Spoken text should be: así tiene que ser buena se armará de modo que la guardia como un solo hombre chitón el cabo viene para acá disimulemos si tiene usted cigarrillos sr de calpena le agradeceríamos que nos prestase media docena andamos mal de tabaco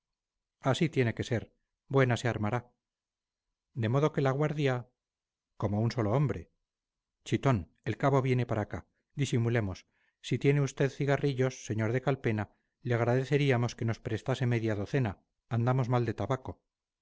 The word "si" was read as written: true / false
true